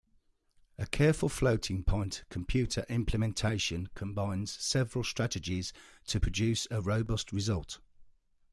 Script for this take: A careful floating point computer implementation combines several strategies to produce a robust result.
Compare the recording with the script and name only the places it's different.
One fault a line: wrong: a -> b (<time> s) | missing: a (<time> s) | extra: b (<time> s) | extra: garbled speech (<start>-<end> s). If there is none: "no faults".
no faults